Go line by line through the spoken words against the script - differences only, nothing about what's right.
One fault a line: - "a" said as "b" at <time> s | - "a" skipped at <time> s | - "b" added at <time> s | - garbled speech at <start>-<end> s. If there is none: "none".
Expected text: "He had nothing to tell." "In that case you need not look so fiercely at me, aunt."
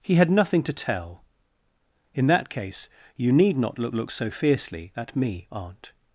- "look" added at 3.9 s